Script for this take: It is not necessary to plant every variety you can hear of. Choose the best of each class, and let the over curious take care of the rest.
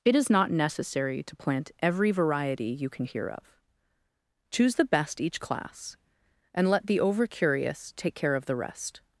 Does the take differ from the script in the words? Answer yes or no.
yes